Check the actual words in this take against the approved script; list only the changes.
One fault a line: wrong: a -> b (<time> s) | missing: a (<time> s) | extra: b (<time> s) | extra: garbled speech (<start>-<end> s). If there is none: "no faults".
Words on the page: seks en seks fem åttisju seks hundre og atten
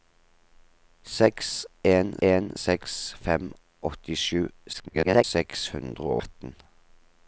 extra: en (2.3 s)
extra: garbled speech (4.7-5.2 s)
missing: og (6.1 s)